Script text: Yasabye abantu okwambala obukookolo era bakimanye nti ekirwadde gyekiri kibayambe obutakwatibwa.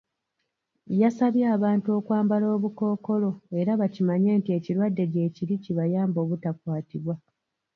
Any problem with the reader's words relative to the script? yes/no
no